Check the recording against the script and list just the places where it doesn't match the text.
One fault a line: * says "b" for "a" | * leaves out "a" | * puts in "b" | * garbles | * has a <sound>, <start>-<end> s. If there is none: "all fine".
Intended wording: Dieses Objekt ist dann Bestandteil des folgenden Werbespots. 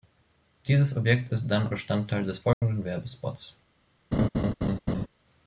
* has a dropout, 2.5-2.6 s
* has a laugh, 4.1-5.1 s